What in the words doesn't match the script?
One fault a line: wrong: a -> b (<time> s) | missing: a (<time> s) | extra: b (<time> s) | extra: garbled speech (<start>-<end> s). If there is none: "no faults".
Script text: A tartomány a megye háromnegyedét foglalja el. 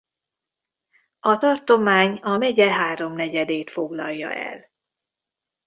no faults